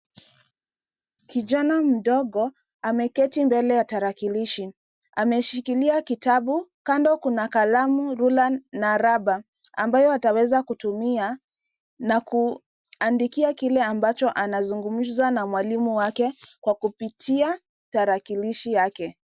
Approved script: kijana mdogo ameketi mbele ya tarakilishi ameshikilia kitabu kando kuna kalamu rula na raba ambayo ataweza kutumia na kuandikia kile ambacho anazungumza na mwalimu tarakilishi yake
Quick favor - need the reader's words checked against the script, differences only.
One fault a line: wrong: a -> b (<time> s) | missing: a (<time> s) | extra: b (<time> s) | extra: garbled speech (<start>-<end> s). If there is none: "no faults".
extra: wake kwa kupitia (16.0 s)